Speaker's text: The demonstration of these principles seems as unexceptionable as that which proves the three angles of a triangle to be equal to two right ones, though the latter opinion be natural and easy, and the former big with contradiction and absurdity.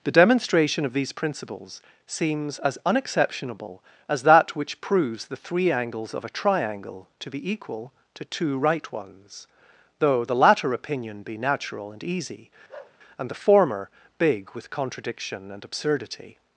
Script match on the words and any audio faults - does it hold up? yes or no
no